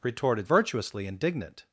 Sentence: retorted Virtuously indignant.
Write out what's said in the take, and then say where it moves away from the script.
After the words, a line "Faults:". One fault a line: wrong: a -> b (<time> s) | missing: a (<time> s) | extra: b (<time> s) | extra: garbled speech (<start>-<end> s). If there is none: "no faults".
retorted Virtuously indignant.
Faults:
no faults